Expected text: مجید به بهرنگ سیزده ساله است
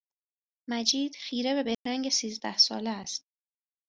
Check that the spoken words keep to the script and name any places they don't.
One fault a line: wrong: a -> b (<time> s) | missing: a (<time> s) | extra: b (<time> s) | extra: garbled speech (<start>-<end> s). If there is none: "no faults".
extra: خیره (1.1 s)